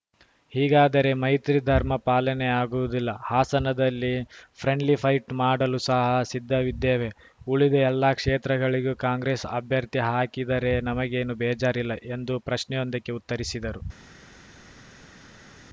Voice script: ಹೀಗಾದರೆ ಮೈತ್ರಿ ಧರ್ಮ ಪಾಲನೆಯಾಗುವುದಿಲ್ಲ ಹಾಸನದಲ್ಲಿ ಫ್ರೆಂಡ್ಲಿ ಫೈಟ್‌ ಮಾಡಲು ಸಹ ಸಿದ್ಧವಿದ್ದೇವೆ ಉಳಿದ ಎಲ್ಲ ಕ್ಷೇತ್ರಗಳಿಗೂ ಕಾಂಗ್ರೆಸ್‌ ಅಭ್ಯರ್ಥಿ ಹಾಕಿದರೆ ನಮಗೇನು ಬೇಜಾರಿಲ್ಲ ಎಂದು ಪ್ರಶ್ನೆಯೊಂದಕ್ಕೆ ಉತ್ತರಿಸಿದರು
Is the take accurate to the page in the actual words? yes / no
yes